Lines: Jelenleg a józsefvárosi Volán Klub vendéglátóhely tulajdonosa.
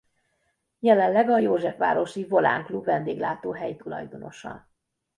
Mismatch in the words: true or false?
false